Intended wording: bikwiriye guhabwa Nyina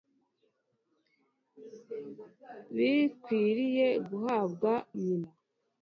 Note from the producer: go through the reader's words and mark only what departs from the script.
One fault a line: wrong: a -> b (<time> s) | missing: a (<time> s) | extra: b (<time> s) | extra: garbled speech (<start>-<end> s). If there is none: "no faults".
no faults